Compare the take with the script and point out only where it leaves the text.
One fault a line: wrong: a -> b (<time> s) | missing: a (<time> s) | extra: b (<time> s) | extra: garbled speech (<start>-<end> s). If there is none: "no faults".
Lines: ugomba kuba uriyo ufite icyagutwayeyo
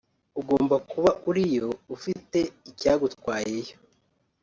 no faults